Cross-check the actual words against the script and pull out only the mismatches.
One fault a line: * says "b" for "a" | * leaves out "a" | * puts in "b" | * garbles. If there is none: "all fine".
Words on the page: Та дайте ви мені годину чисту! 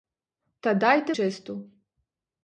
* leaves out "ви мені годину"